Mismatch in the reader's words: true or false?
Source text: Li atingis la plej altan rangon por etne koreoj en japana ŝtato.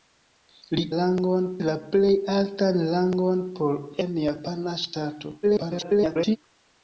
true